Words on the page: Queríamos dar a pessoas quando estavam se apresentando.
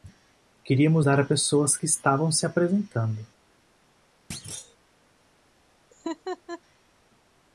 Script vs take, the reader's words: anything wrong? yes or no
yes